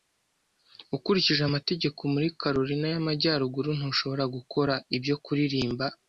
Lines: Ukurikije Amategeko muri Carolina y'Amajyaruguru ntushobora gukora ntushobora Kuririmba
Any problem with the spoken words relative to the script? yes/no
yes